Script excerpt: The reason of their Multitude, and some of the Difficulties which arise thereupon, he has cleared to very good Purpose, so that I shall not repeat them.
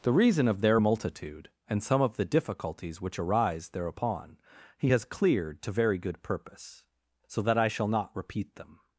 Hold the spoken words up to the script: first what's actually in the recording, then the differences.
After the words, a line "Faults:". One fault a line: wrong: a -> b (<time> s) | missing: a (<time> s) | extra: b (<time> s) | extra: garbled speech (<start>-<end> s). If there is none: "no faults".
The reason of their Multitude, and some of the Difficulties which arise thereupon, he has cleared to very good Purpose, so that I shall not repeat them.
Faults:
no faults